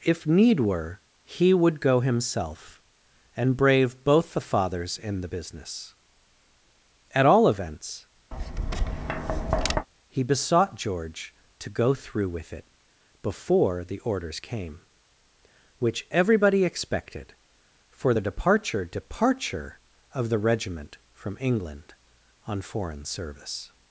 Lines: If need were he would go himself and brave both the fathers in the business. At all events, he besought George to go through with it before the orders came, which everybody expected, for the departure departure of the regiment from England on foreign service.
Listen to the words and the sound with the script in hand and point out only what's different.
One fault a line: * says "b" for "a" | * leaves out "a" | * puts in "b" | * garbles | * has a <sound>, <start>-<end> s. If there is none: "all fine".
* has a tap, 8.3-9.9 s